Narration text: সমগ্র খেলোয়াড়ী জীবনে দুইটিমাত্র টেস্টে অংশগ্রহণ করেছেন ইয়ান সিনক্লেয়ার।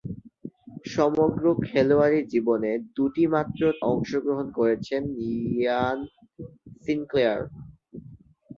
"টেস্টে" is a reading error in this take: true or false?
true